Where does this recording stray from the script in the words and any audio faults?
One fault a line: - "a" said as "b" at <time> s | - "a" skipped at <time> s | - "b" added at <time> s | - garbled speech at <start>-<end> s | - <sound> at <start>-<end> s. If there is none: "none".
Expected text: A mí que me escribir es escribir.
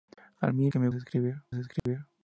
- dropout at 1.8-1.9 s